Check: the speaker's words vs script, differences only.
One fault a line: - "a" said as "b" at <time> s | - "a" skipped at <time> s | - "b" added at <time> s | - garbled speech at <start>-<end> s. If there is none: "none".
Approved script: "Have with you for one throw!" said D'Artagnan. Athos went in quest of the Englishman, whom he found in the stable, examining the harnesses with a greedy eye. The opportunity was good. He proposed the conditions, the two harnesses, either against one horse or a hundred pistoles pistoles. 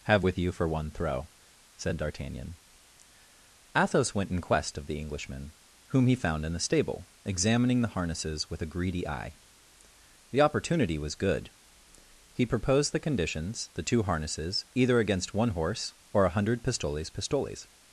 none